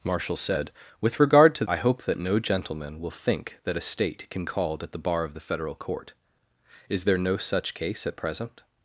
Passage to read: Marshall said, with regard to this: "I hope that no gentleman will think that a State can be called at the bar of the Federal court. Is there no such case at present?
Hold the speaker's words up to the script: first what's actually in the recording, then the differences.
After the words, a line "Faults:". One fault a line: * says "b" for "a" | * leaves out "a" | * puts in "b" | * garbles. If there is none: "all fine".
Marshall said, with regard to: "I hope that no gentleman will think that a State can called at the bar of the Federal court. Is there no such case at present?
Faults:
* leaves out "this"
* leaves out "be"